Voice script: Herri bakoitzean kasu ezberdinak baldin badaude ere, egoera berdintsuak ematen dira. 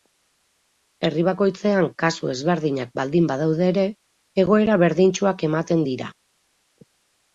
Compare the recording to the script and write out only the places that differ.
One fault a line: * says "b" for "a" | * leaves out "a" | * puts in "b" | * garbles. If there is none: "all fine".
all fine